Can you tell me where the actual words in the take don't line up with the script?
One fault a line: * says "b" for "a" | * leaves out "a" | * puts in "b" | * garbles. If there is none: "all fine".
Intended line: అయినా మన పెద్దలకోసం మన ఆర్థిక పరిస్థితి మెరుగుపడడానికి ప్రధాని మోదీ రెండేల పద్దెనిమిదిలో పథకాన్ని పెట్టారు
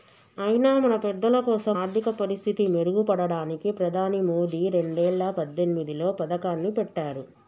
* leaves out "మన"